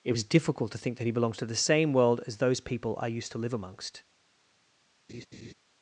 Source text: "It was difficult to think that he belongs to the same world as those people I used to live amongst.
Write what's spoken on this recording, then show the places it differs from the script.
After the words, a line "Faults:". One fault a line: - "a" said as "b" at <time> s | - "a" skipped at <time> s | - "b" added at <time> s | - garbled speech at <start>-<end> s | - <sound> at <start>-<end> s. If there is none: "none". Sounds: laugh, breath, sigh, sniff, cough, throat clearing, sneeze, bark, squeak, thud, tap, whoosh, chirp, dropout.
"It was difficult to think that he belongs to the same world as those people I used to live amongst.
Faults:
- laugh at 5.1-5.5 s